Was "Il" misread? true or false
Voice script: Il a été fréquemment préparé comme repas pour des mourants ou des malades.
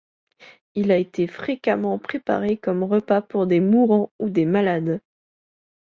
false